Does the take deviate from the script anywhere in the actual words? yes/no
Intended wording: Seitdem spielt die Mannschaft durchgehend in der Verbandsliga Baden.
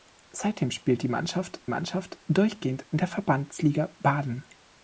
yes